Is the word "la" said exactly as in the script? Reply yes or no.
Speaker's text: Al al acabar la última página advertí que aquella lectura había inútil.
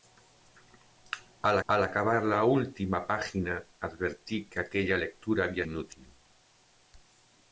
yes